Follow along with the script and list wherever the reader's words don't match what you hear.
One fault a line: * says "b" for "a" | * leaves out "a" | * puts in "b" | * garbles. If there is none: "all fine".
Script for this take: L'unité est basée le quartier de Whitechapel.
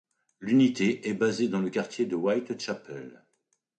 * puts in "dans"